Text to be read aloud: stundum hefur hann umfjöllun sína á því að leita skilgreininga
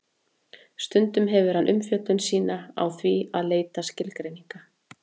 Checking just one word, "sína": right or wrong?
right